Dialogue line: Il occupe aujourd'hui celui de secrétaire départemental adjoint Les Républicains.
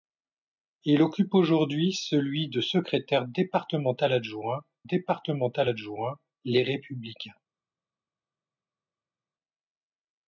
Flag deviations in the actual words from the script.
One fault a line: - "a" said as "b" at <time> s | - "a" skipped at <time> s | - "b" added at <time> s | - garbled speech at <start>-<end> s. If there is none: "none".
- "départemental adjoint" added at 4.8 s